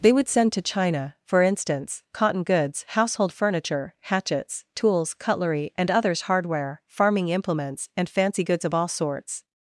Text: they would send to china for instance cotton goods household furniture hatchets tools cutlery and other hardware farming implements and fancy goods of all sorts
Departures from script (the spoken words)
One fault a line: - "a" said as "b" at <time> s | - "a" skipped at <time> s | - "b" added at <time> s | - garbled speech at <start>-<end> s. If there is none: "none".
- "other" said as "others" at 5.9 s